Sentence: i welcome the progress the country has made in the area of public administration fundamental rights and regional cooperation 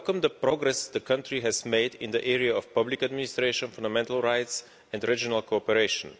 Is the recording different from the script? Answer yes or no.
no